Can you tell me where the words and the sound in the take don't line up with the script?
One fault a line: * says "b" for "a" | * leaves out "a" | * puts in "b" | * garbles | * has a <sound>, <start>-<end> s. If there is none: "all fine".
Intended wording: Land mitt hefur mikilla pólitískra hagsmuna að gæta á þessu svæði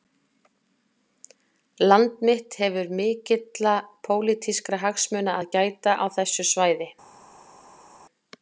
all fine